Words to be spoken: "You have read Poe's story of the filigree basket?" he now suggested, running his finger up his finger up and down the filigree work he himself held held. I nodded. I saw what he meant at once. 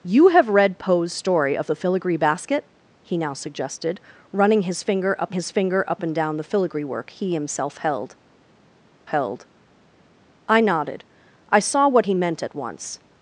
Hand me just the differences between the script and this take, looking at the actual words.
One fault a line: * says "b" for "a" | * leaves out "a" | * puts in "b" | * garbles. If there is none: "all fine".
all fine